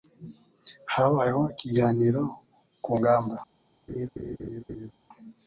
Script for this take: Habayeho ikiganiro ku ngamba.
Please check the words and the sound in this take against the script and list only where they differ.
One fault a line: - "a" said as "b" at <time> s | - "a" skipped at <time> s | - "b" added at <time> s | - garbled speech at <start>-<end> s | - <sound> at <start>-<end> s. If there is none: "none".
- laugh at 3.9-4.9 s